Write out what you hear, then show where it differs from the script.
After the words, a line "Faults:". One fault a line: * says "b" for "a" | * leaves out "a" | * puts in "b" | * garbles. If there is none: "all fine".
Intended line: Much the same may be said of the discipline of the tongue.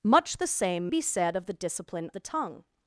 Much the same be said of the discipline the tongue.
Faults:
* leaves out "may"
* leaves out "of"